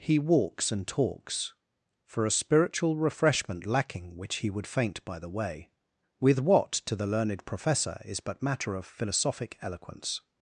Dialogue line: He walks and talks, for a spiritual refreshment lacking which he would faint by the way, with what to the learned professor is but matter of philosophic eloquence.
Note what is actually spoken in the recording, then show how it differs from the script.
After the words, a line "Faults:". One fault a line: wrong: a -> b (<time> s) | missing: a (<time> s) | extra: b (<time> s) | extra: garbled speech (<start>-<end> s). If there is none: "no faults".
He walks and talks, for a spiritual refreshment lacking which he would faint by the way, with what to the learned professor is but matter of philosophic eloquence.
Faults:
no faults